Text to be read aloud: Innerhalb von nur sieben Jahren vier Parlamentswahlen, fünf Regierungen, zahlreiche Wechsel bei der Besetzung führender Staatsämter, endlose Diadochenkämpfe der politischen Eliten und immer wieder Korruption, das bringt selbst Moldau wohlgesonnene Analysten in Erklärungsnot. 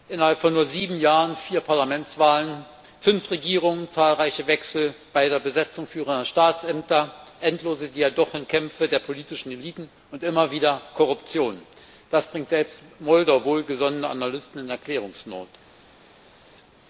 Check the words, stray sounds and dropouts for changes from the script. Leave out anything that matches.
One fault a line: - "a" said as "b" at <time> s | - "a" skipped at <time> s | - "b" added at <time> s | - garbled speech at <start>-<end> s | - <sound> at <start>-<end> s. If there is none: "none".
none